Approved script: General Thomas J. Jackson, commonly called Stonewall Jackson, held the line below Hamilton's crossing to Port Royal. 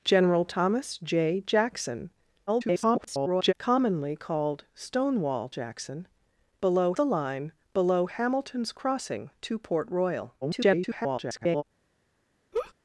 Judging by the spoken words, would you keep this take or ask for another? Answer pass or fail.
fail